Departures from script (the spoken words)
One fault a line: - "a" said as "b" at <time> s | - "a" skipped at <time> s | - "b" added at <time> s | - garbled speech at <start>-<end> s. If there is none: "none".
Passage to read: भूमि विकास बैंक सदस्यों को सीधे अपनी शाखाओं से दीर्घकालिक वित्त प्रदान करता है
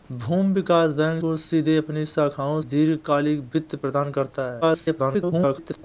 - "सदस्यों" skipped at 1.2 s
- "से" skipped at 2.6 s
- garbled speech at 4.6-5.8 s